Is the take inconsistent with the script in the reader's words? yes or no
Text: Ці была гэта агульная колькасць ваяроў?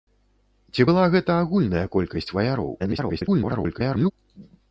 yes